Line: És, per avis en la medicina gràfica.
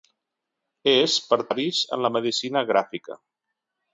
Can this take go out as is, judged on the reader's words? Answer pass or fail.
pass